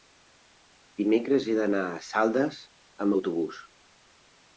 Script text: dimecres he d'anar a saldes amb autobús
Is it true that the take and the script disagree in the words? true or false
false